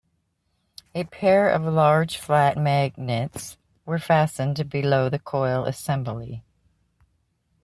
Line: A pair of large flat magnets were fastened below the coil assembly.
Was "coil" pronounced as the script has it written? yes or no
yes